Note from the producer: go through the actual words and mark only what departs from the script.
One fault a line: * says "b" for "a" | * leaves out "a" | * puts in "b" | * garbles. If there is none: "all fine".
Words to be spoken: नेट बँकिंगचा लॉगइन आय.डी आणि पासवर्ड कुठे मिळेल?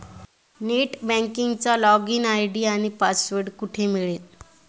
all fine